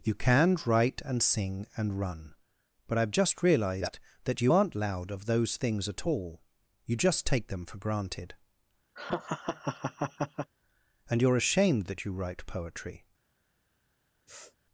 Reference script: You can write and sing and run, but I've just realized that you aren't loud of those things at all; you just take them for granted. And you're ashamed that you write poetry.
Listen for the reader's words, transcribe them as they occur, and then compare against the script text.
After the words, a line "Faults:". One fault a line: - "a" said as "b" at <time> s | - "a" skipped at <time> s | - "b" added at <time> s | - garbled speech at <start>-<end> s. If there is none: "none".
You can write and sing and run, but I've just realized that you aren't loud of those things at all; you just take them for granted. And you're ashamed that you write poetry.
Faults:
none